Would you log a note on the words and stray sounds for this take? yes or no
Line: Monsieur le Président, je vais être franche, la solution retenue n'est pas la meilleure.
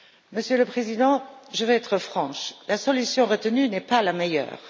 no